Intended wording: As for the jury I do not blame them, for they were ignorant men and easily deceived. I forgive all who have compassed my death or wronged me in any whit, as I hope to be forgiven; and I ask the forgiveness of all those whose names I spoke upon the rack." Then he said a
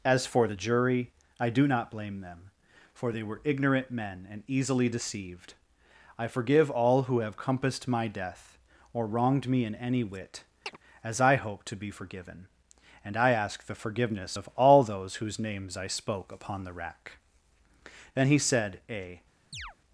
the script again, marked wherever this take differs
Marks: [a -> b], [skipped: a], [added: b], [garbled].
As for the jury I do not blame them, for they were ignorant men and easily deceived. I forgive all who have compassed my death or wronged me in any whit, as I hope to be forgiven; and I ask the forgiveness of all those whose names I spoke upon the rack." Then he said a